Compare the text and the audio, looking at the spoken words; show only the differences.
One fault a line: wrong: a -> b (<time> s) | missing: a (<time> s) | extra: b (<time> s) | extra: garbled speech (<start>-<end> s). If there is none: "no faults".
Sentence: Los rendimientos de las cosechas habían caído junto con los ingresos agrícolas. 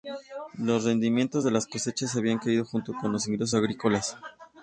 no faults